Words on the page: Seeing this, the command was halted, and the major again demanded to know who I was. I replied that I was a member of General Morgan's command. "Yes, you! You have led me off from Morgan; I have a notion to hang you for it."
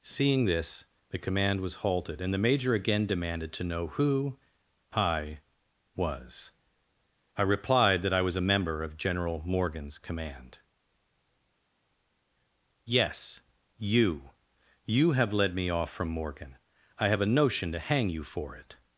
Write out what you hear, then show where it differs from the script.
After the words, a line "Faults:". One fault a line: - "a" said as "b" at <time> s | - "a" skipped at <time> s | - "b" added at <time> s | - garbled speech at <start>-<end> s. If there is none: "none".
Seeing this, the command was halted, and the major again demanded to know who I was. I replied that I was a member of General Morgan's command. "Yes, you! You have led me off from Morgan; I have a notion to hang you for it."
Faults:
none